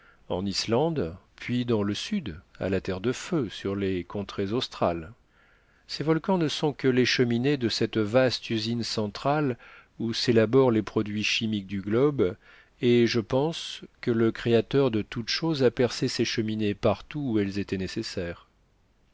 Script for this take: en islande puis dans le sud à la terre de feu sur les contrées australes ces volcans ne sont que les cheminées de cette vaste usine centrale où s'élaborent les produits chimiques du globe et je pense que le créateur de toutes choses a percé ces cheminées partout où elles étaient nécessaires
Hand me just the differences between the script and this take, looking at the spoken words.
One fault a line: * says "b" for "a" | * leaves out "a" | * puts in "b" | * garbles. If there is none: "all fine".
all fine